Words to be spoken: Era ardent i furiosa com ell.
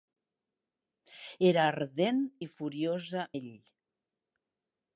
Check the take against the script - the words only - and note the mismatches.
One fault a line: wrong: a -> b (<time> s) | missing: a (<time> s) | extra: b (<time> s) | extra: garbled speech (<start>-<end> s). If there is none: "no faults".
missing: com (3.3 s)